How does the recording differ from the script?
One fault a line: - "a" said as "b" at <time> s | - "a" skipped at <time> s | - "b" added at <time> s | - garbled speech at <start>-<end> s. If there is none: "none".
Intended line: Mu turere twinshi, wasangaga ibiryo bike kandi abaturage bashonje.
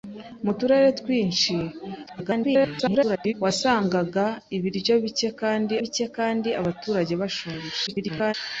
- garbled speech at 2.1-3.3 s
- "bike kandi" added at 5.8 s
- garbled speech at 7.9-8.3 s